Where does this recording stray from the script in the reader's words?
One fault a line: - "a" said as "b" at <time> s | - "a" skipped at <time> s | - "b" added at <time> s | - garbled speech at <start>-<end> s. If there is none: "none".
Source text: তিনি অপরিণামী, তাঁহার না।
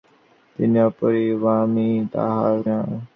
none